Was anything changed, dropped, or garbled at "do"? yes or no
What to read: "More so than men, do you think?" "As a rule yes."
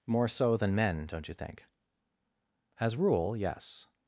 yes